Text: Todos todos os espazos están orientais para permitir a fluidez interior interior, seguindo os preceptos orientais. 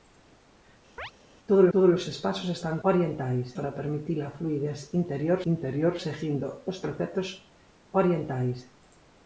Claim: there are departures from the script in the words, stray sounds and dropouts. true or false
true